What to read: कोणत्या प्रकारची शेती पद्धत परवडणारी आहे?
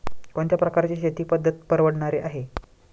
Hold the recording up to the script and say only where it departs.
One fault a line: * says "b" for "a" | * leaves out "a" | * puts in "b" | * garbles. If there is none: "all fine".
all fine